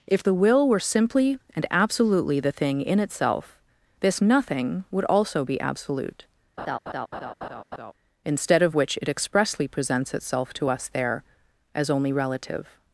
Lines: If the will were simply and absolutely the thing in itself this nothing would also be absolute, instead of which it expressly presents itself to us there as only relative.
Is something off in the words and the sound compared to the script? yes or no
yes